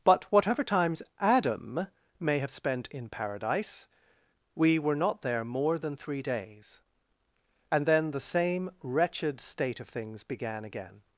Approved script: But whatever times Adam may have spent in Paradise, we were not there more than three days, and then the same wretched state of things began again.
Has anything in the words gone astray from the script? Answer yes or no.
no